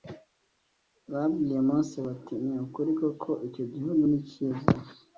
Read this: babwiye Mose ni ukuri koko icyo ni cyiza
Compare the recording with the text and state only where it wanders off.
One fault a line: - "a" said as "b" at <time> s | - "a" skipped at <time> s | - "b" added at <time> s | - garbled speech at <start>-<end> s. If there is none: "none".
- "bati" added at 2.1 s
- "gihugu" added at 3.7 s